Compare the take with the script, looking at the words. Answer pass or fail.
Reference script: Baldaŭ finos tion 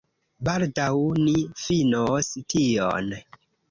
fail